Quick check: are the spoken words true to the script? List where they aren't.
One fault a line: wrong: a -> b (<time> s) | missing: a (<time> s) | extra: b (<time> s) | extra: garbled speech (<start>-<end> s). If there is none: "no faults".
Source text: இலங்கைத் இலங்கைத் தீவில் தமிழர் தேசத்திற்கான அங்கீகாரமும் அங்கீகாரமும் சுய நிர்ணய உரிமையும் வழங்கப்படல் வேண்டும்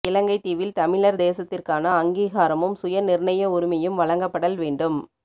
missing: இலங்கைத் (0.4 s)
missing: அங்கீகாரமும் (2.8 s)